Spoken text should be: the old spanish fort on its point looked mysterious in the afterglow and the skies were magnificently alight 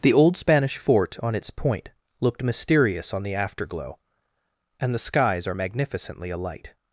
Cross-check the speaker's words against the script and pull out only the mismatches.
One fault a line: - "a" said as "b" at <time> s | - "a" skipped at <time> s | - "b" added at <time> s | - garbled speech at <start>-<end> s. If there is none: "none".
- "in" said as "on" at 3.1 s
- "were" said as "are" at 5.5 s